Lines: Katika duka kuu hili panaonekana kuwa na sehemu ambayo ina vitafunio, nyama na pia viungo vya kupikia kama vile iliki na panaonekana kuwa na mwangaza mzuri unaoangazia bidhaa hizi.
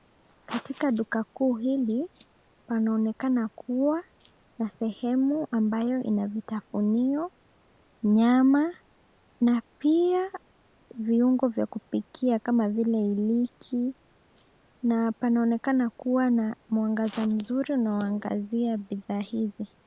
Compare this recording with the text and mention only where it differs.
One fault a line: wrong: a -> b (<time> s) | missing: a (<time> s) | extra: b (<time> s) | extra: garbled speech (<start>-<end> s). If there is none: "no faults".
no faults